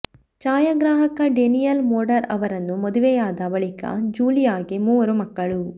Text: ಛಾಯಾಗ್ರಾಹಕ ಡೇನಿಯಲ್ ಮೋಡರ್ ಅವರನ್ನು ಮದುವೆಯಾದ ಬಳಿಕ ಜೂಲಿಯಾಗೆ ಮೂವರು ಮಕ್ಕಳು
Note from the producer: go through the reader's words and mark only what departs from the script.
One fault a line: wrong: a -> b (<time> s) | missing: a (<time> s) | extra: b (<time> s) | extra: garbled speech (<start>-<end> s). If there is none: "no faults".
no faults